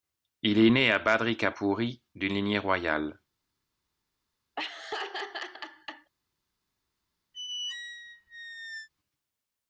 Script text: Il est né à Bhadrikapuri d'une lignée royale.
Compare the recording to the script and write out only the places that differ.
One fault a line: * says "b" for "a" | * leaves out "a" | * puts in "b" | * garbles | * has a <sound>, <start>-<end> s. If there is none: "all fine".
* has a laugh, 4.6-6.1 s
* has a squeak, 7.3-8.9 s